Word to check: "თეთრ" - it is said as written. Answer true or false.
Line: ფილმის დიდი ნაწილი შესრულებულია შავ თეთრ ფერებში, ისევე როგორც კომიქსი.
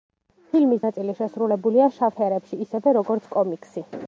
false